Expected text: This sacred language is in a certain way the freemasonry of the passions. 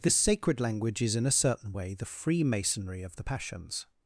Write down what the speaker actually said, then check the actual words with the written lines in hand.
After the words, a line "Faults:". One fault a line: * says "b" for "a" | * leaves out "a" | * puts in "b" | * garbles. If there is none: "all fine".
This sacred language is in a certain way the freemasonry of the passions.
Faults:
all fine